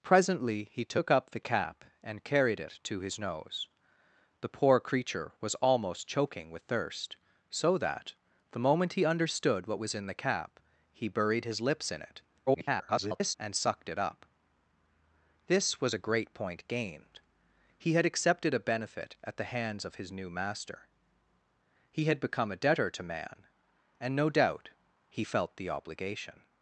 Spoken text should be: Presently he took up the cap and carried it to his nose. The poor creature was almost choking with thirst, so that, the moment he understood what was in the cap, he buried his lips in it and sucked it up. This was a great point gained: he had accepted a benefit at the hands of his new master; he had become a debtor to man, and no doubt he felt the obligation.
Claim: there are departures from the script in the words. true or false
true